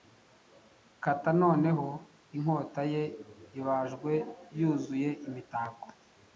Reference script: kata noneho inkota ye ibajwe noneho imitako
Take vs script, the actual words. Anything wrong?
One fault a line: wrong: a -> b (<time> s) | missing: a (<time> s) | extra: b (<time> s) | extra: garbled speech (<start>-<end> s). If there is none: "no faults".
wrong: noneho -> yuzuye (4.6 s)